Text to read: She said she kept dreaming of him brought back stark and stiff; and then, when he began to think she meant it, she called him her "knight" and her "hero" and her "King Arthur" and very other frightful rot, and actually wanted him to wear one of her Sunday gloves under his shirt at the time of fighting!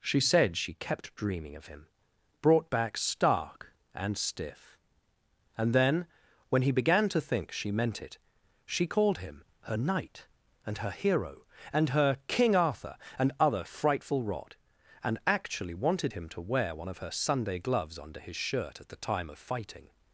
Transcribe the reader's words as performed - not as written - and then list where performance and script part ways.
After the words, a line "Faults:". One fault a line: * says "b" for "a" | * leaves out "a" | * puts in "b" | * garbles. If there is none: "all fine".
She said she kept dreaming of him brought back stark and stiff; and then, when he began to think she meant it, she called him her "knight" and her "hero" and her "King Arthur" and other frightful rot, and actually wanted him to wear one of her Sunday gloves under his shirt at the time of fighting!
Faults:
* leaves out "very"